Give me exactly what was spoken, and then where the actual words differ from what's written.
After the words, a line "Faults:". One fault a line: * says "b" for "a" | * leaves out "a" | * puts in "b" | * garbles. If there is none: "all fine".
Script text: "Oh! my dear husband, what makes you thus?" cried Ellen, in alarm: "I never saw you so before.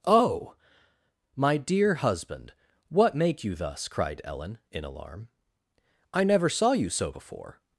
"Oh! my dear husband, what make you thus?" cried Ellen, in alarm: "I never saw you so before.
Faults:
* says "make" for "makes"